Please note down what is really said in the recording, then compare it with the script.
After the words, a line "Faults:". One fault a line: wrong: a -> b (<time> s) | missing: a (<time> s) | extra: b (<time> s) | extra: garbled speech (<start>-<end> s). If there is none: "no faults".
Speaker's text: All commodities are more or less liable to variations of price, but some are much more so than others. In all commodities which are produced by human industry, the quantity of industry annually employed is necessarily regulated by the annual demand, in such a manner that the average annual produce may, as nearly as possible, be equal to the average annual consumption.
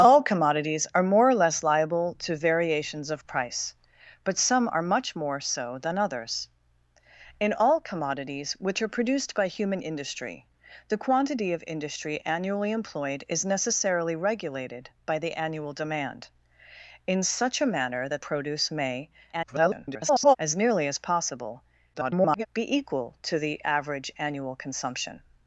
All commodities are more or less liable to variations of price, but some are much more so than others. In all commodities which are produced by human industry, the quantity of industry annually employed is necessarily regulated by the annual demand, in such a manner that produce may, [garbled] as nearly as possible, [garbled] be equal to the average annual consumption.
Faults:
missing: the average annual (18.2 s)
extra: garbled speech (19.3-20.4 s)
extra: garbled speech (21.9-22.5 s)